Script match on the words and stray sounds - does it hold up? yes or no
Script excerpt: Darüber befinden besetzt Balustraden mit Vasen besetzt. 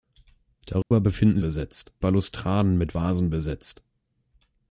no